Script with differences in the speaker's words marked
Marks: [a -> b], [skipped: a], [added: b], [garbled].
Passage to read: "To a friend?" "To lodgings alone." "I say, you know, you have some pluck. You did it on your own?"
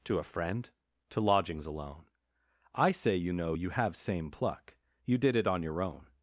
"To a friend?" "To lodgings alone." "I say, you know, you have [some -> same] pluck. You did it on your own?"